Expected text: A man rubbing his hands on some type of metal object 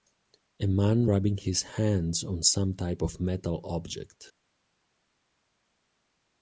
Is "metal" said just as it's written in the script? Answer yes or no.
yes